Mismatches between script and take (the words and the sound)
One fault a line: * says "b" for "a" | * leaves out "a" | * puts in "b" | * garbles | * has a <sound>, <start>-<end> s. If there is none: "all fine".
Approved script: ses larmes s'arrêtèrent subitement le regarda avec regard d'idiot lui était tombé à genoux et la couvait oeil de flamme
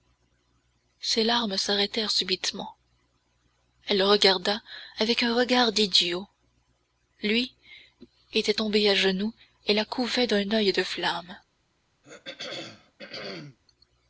* puts in "elle"
* puts in "un"
* puts in "d'un"
* has a throat clearing, 12.0-13.6 s